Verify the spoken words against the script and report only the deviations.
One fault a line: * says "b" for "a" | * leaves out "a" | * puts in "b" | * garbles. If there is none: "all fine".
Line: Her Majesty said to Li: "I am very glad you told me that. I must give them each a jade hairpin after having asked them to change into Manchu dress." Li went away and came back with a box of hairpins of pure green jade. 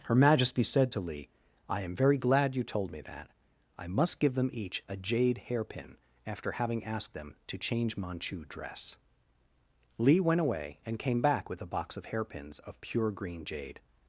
* leaves out "into"